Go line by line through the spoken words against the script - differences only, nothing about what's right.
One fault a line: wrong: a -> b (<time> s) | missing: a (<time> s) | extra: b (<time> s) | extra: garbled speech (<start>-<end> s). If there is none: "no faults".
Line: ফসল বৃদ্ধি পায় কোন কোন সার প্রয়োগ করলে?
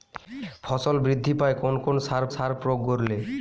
extra: সার (2.3 s)